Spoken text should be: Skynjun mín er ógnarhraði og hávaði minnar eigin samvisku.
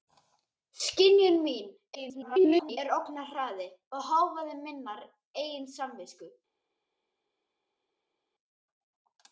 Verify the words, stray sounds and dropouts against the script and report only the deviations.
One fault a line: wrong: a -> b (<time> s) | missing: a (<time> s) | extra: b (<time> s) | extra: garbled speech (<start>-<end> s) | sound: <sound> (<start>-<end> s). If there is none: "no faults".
extra: garbled speech (1.9-2.8 s)